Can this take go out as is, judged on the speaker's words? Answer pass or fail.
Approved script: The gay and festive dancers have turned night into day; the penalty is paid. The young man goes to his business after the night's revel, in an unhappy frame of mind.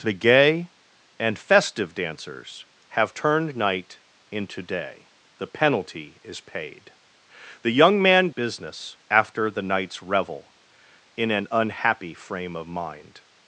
fail